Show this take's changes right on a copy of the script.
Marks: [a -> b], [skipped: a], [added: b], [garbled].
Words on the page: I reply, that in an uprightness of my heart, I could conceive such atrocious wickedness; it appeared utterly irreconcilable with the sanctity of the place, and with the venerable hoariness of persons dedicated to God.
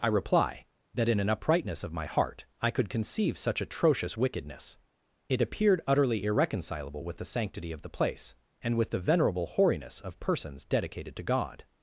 I reply, that in an uprightness of my heart, I could conceive such atrocious wickedness; it appeared utterly irreconcilable with the sanctity of the place, and with the venerable hoariness of persons dedicated to God.